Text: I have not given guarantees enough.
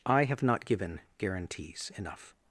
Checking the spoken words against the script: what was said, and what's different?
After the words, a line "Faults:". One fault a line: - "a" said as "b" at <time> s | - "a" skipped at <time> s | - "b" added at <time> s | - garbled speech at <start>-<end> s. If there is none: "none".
I have not given guarantees enough.
Faults:
none